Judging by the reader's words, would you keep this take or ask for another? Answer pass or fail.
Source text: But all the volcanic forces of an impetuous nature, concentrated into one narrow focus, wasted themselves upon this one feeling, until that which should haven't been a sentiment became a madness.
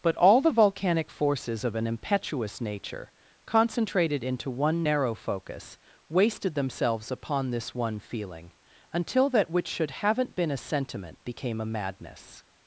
pass